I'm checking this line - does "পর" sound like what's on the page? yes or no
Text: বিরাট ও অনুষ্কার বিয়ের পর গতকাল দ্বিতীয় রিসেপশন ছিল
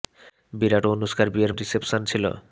no